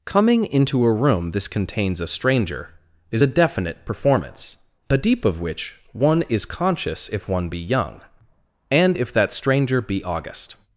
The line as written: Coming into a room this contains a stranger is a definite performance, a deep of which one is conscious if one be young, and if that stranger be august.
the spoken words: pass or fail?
pass